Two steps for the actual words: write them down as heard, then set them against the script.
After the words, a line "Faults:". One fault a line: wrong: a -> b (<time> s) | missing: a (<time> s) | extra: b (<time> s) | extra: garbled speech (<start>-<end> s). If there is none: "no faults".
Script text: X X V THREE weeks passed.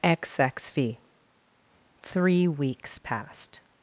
X X V THREE weeks passed.
Faults:
no faults